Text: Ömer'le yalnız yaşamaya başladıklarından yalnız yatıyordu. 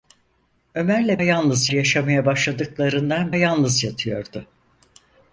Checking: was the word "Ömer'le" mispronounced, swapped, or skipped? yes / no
no